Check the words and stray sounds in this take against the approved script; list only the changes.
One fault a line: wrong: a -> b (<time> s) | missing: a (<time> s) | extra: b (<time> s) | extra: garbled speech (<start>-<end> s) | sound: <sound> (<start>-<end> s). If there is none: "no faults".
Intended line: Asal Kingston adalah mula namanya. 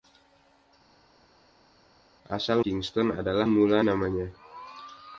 no faults